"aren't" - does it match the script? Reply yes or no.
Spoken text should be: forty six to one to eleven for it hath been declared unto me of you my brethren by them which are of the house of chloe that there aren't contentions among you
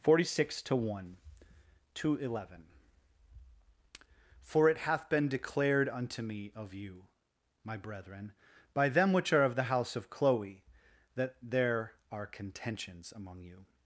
no